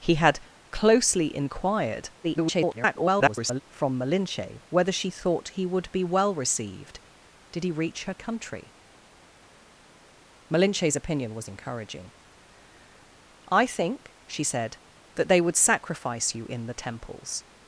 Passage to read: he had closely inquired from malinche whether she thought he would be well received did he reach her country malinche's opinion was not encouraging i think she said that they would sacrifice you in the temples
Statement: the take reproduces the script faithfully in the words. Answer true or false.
false